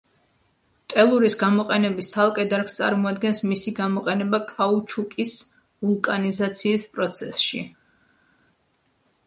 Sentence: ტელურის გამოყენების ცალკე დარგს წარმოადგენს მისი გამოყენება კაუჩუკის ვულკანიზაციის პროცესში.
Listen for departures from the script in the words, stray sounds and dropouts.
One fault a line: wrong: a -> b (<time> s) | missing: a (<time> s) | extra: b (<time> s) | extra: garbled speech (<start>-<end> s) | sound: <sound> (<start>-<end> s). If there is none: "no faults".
no faults